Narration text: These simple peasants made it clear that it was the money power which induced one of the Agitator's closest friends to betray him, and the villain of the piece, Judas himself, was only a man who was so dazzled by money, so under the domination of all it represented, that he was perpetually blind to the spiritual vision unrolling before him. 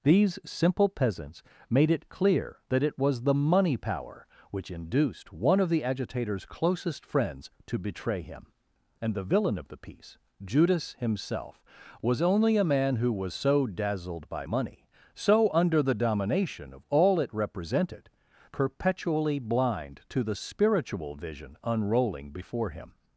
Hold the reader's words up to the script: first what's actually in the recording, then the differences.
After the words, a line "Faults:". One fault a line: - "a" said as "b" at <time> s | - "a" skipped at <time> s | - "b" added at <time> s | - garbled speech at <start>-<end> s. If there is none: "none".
These simple peasants made it clear that it was the money power which induced one of the Agitator's closest friends to betray him, and the villain of the piece, Judas himself, was only a man who was so dazzled by money, so under the domination of all it represented, perpetually blind to the spiritual vision unrolling before him.
Faults:
- "that he was" skipped at 18.1 s